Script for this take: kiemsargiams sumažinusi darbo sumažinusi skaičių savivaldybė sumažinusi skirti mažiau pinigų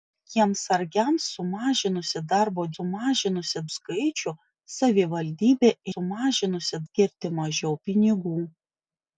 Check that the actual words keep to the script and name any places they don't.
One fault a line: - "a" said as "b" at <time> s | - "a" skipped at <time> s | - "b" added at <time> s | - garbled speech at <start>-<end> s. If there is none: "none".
none